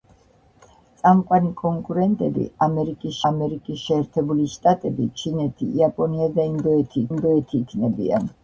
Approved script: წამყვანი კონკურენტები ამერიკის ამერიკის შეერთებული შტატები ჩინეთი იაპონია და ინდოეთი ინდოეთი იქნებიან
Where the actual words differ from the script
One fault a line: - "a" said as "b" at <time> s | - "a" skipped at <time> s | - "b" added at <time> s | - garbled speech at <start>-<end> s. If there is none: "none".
none